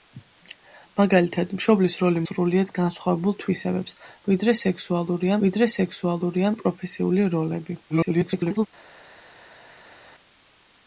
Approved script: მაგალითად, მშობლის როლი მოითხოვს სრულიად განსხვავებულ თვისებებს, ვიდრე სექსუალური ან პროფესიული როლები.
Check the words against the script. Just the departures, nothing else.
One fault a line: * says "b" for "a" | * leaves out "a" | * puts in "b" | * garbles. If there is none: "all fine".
* leaves out "მოითხოვს"
* puts in "ვიდრე სექსუალური"
* garbles